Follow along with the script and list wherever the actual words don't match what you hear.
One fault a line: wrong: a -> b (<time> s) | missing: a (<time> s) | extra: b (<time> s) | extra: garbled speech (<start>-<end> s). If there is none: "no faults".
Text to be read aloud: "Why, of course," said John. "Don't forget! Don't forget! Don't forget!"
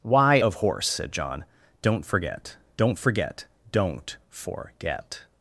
wrong: course -> horse (0.5 s)